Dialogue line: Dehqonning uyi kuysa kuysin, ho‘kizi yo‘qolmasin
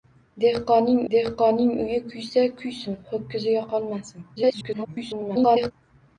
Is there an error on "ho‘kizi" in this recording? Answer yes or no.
no